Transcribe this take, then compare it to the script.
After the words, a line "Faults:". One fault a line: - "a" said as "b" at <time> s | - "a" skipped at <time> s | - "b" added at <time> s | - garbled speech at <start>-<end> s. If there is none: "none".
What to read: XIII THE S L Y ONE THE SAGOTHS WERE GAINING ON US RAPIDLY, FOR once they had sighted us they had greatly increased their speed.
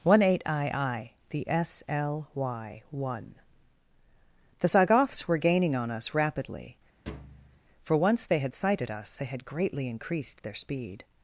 One eight i i THE S L Y ONE THE SAGOTHS WERE GAINING ON US RAPIDLY, FOR once they had sighted us they had greatly increased their speed.
Faults:
- "XIII" said as "One eight i i" at 0.0 s